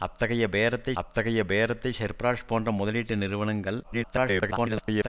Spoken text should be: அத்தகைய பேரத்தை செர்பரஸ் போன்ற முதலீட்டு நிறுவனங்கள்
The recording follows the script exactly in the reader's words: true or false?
false